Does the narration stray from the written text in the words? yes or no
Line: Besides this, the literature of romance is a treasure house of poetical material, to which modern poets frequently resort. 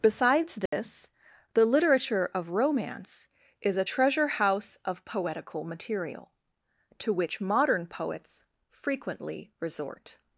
no